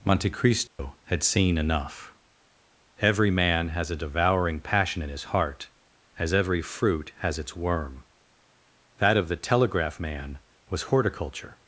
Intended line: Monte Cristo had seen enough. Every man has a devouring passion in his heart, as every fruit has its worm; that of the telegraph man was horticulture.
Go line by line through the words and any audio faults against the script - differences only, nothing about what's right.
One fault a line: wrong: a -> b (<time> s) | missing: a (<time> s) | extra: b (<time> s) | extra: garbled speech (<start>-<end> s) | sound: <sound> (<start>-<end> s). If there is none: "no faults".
sound: dropout (0.7-0.8 s)